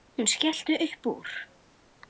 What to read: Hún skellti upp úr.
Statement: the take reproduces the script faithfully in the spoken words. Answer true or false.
true